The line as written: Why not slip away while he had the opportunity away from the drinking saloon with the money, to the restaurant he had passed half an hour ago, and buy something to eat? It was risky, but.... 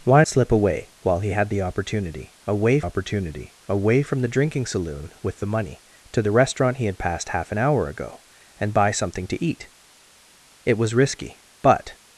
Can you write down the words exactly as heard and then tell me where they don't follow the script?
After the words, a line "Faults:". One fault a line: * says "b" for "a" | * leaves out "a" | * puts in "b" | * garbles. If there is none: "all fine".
Why slip away while he had the opportunity away opportunity away from the drinking saloon with the money, to the restaurant he had passed half an hour ago, and buy something to eat? It was risky, but....
Faults:
* leaves out "not"
* puts in "opportunity away"